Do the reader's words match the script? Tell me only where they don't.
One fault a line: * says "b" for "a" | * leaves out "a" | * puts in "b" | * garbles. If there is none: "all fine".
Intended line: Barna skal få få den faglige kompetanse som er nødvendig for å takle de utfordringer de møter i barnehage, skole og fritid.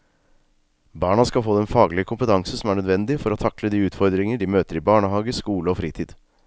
* leaves out "få"